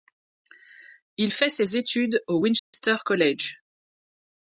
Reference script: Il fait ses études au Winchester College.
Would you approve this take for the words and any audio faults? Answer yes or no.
no